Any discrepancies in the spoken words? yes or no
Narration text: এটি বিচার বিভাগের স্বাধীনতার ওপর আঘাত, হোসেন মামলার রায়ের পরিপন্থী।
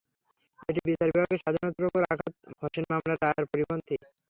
no